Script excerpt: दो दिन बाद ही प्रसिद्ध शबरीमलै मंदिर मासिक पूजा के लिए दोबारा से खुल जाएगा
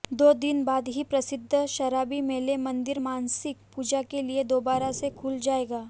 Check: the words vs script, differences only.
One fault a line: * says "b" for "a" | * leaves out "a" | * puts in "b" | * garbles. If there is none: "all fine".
all fine